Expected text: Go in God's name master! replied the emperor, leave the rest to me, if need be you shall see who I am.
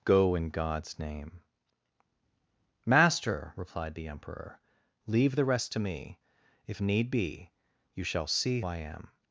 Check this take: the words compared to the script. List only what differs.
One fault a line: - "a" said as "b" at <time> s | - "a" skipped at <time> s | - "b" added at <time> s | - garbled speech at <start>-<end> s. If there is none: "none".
- "who" skipped at 8.6 s